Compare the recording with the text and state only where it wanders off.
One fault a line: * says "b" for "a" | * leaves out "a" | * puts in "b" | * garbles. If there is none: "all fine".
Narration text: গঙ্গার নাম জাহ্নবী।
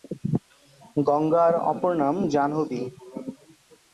* puts in "অপর"